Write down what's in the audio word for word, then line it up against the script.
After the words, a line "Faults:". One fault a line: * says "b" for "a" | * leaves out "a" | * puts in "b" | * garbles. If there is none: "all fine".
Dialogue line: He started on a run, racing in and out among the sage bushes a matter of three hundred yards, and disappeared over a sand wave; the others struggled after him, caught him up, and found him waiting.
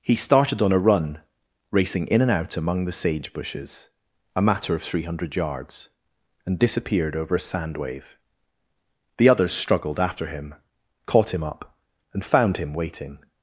He started on a run, racing in and out among the sage bushes a matter of three hundred yards, and disappeared over a sand wave; the others struggled after him, caught him up, and found him waiting.
Faults:
all fine